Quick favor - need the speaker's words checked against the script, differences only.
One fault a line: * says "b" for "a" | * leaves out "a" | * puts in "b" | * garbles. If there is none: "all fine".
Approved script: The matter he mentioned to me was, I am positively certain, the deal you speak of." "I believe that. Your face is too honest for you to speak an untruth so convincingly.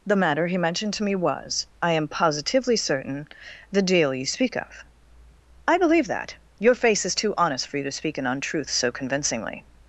all fine